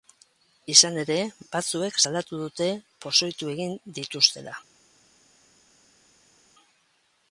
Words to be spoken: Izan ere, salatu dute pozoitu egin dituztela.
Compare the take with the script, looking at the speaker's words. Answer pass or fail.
fail